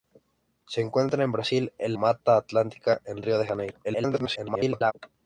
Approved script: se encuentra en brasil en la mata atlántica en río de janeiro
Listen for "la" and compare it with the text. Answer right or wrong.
wrong